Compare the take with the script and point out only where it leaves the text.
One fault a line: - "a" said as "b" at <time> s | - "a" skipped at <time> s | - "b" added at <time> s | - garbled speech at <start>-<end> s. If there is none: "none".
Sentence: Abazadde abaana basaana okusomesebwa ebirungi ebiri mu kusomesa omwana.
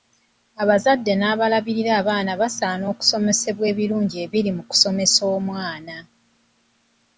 - "n'abalabirira" added at 1.1 s